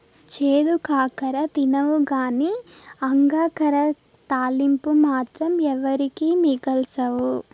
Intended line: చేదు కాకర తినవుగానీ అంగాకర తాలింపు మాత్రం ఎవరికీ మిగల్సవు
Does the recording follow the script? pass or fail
pass